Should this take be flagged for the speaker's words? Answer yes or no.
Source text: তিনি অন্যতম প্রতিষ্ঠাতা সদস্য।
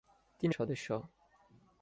yes